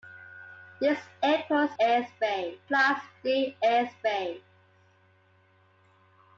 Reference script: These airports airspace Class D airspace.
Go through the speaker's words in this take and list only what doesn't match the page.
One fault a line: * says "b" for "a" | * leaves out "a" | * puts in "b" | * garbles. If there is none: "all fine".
all fine